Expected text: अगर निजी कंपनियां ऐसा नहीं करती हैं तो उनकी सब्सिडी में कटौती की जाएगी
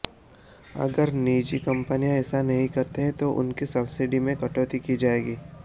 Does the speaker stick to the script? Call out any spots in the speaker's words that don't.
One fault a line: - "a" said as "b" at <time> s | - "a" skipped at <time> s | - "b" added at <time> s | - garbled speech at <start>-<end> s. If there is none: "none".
none